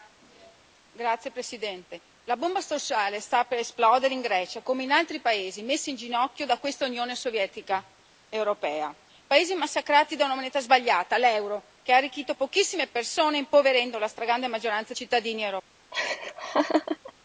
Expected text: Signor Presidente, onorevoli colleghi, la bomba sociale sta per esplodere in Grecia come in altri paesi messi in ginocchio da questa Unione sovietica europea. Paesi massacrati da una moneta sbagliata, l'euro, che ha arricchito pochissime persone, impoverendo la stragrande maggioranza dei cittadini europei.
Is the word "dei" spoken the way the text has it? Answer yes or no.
no